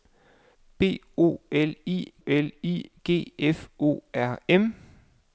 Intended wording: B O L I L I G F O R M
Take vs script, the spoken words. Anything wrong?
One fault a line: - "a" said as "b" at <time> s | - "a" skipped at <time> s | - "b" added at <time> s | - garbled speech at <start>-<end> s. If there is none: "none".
none